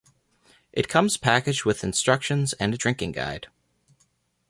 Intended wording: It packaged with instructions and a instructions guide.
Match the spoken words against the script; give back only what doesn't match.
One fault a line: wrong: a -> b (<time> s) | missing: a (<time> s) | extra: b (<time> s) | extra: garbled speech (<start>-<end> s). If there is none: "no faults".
extra: comes (0.9 s)
wrong: instructions -> drinking (2.8 s)